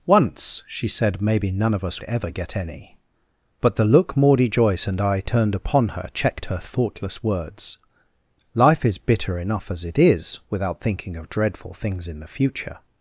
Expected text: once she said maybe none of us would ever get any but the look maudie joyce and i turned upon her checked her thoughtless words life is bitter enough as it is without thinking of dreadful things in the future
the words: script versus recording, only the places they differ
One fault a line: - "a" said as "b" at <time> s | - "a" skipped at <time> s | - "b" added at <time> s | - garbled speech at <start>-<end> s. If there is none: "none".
- "would" skipped at 2.0 s